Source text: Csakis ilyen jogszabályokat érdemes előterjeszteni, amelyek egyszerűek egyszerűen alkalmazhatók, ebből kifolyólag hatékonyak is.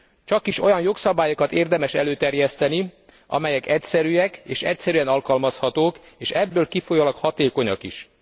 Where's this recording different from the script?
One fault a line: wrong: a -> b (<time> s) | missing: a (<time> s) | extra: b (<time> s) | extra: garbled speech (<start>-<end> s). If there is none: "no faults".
wrong: ilyen -> olyan (0.6 s)
extra: és (4.4 s)
extra: és (6.2 s)